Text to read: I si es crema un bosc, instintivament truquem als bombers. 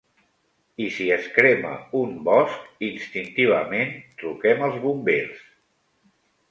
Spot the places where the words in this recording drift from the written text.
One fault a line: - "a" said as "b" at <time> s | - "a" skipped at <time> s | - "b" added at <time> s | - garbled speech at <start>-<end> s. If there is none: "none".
none